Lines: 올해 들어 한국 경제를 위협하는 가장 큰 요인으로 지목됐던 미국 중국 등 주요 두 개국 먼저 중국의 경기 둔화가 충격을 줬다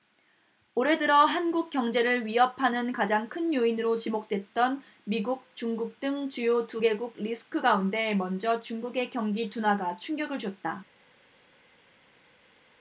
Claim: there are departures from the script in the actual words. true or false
true